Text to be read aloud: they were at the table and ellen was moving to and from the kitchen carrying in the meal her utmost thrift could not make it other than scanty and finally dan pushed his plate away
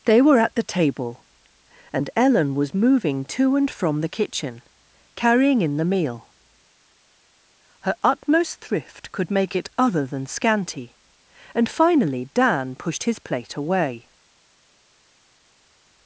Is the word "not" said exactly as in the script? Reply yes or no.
no